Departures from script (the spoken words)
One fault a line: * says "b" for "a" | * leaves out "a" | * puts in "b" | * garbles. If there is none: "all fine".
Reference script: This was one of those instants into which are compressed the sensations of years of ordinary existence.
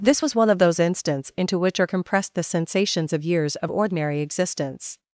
all fine